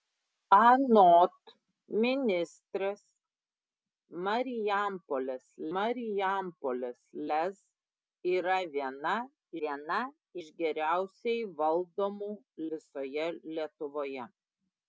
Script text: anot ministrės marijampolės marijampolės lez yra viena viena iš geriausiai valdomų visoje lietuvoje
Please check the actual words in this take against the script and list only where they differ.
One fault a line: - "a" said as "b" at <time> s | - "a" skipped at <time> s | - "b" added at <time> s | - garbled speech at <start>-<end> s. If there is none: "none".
none